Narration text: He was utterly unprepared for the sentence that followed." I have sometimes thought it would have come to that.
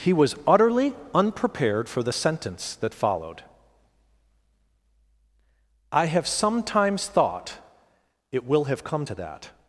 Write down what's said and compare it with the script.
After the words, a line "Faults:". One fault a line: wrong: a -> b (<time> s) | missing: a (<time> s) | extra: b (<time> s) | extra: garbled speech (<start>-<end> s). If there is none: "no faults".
He was utterly unprepared for the sentence that followed." I have sometimes thought it will have come to that.
Faults:
wrong: would -> will (8.4 s)